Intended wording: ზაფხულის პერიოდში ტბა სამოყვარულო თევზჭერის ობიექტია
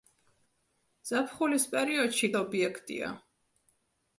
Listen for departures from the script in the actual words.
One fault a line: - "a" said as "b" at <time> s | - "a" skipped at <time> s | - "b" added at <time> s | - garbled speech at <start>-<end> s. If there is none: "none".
- "ტბა სამოყვარულო თევზჭერის" skipped at 2.3 s